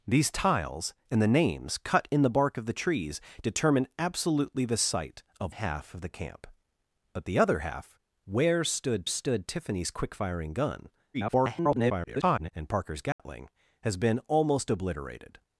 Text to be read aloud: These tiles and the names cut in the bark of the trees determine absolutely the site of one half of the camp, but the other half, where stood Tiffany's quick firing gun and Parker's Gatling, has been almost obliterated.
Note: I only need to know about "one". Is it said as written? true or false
false